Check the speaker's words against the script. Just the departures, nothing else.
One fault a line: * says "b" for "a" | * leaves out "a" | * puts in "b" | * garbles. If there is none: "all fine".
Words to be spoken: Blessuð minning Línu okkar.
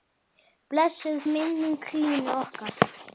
all fine